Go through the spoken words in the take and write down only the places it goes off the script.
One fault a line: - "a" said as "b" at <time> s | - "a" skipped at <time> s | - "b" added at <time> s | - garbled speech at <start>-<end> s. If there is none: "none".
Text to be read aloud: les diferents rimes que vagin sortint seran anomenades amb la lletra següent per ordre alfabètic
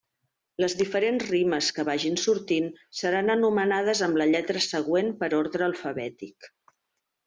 none